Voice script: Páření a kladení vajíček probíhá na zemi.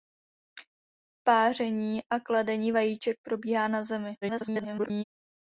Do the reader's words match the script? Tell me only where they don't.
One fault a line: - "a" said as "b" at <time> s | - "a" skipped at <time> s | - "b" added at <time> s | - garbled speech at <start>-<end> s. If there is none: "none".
- garbled speech at 4.2-5.0 s